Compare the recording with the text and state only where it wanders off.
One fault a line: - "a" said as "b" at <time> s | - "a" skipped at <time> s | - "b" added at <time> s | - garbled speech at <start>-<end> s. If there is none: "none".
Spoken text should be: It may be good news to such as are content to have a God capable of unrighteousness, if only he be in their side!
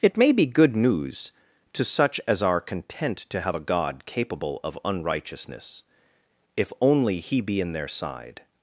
none